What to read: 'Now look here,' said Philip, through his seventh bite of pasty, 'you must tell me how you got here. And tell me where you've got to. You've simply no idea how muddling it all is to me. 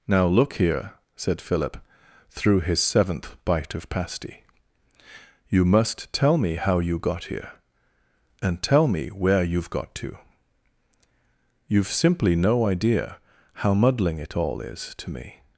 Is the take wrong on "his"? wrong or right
right